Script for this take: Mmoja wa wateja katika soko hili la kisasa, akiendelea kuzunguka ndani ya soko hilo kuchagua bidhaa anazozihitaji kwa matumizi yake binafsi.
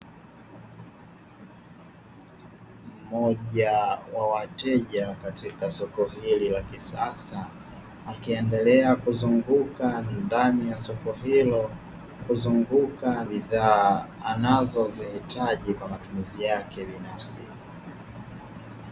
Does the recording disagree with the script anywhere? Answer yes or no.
yes